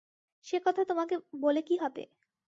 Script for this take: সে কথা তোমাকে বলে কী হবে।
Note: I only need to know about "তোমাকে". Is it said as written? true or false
true